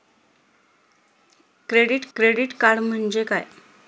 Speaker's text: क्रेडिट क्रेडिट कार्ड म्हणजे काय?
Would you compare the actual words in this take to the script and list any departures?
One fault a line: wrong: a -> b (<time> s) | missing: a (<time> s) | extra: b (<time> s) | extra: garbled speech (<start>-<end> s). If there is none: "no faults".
no faults